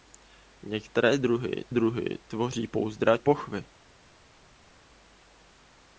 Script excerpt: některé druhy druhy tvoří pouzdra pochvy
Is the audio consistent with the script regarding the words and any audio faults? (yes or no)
yes